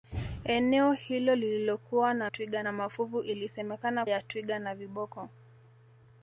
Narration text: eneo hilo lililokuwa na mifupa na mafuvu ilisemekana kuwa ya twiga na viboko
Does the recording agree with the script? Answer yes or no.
no